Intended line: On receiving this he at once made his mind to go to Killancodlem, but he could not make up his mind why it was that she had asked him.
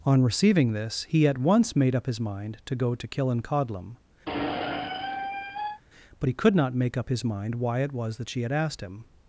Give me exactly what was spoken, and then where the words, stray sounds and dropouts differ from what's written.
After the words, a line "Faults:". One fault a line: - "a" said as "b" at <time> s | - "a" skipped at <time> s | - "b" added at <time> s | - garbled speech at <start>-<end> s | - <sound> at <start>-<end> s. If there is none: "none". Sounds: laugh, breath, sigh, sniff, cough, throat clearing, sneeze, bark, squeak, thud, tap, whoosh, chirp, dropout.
On receiving this he at once made up his mind to go to Killancodlem, but he could not make up his mind why it was that she had asked him.
Faults:
- "up" added at 1.9 s
- squeak at 4.3-5.8 s